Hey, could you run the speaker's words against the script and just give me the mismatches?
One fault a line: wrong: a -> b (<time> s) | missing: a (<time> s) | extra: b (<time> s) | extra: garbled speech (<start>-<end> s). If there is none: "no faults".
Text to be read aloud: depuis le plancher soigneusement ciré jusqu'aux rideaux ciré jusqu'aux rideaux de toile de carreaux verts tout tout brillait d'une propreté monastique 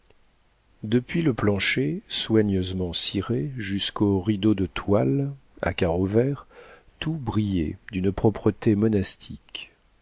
missing: ciré jusqu'aux rideaux (4.5 s)
wrong: de -> à (5.6 s)
missing: tout (7.1 s)